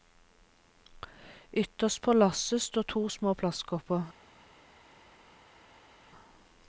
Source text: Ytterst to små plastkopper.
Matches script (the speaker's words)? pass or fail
fail